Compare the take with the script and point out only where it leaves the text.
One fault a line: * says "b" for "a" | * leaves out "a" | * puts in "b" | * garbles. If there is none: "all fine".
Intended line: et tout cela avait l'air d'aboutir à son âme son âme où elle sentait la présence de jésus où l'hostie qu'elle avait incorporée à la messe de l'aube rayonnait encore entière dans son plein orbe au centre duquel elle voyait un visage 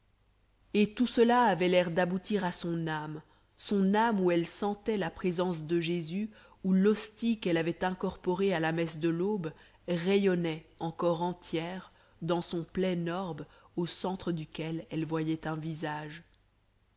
all fine